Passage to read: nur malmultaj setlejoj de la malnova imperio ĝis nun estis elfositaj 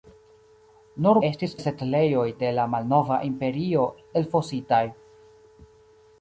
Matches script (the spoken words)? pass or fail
fail